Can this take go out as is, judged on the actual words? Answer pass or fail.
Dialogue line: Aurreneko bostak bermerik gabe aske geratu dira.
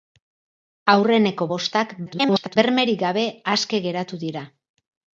fail